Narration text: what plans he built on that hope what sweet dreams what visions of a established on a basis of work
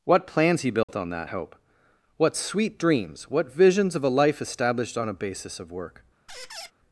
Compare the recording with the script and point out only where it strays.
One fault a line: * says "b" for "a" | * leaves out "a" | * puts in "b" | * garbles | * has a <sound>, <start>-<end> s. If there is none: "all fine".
* has a dropout, 0.8-0.9 s
* puts in "life"
* has a squeak, 6.3-6.7 s